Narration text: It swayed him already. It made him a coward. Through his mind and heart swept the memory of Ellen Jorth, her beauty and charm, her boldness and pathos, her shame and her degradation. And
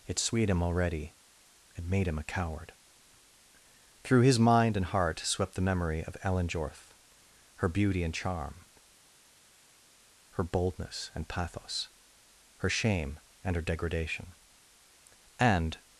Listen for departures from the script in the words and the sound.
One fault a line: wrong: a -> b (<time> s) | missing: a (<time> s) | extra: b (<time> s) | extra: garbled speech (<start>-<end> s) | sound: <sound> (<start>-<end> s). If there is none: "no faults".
no faults